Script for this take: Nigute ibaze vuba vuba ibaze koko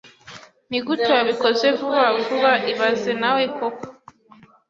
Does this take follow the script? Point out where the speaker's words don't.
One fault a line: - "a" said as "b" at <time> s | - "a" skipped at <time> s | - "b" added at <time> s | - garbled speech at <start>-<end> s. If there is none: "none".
- "ibaze" said as "wabikoze" at 1.2 s
- "nawe" added at 3.2 s